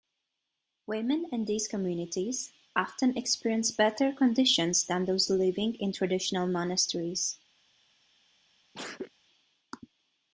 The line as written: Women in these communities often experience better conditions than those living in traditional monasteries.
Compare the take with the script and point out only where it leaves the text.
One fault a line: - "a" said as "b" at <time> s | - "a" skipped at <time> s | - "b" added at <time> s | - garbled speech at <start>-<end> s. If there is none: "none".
none